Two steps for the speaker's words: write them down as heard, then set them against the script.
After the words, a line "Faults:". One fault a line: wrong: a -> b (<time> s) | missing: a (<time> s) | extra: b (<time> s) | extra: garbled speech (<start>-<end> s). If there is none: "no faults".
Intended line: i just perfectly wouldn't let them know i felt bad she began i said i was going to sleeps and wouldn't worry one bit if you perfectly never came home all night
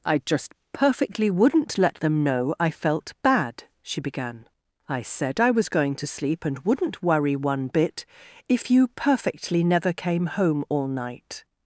i just perfectly wouldn't let them know i felt bad she began i said i was going to sleep and wouldn't worry one bit if you perfectly never came home all night
Faults:
wrong: sleeps -> sleep (6.1 s)